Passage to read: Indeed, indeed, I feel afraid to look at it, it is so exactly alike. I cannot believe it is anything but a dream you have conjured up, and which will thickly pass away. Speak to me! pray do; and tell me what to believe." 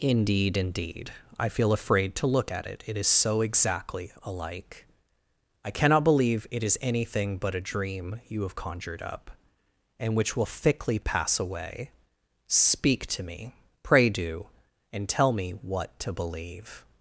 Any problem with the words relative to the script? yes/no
no